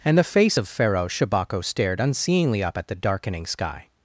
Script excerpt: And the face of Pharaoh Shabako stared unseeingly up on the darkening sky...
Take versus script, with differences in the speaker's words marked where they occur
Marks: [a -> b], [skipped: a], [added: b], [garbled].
And the face of Pharaoh Shabako stared unseeingly up [on -> at] the darkening sky...